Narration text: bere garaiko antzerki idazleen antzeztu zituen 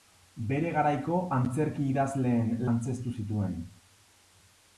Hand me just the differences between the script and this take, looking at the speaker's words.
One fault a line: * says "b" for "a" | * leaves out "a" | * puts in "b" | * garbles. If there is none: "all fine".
all fine